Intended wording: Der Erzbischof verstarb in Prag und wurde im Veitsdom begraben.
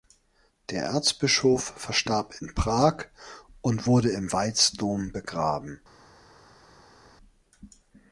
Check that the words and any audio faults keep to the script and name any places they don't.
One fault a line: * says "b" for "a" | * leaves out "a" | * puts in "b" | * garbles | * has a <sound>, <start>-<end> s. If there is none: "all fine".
all fine